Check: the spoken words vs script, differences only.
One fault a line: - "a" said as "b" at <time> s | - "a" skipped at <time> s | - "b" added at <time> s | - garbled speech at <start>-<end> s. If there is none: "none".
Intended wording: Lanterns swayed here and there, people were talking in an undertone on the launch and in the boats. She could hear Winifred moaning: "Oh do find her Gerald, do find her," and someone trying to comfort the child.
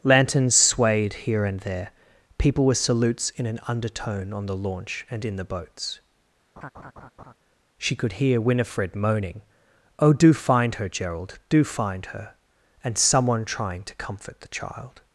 - "talking" said as "salutes" at 2.7 s